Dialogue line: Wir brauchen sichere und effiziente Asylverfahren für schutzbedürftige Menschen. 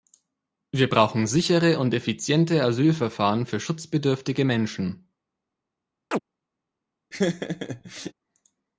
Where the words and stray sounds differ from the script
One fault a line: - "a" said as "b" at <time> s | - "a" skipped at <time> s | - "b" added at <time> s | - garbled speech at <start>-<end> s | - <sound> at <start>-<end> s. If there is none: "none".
- chirp at 6.1-6.2 s
- laugh at 7.1-8.1 s